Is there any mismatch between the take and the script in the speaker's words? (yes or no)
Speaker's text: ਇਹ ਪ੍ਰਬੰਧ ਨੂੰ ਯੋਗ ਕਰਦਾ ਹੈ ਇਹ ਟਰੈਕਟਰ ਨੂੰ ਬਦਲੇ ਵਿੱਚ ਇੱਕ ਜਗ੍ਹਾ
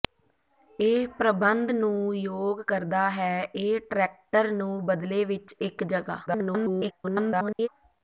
yes